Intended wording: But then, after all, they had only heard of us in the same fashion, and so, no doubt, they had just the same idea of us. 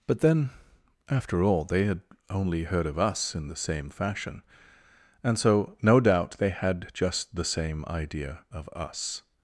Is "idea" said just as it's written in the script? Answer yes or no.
yes